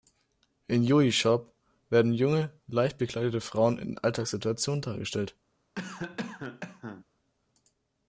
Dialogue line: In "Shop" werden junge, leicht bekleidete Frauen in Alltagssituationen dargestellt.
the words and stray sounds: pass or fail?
fail